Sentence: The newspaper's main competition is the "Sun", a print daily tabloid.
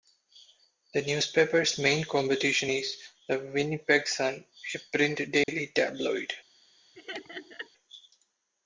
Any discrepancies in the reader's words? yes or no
yes